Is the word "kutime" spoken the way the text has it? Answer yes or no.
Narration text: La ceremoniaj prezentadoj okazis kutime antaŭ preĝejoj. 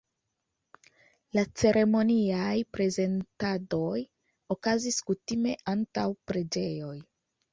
yes